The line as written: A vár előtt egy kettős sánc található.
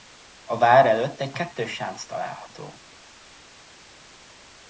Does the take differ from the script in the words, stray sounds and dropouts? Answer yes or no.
no